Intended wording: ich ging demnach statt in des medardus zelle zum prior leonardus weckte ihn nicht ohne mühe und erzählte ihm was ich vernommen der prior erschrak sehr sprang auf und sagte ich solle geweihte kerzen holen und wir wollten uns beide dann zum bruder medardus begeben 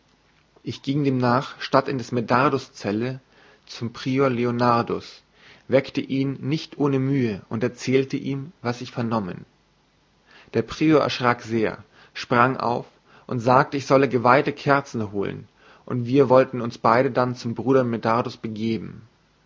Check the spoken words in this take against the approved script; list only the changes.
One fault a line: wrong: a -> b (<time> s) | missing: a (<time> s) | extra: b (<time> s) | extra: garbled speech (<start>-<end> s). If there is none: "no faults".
no faults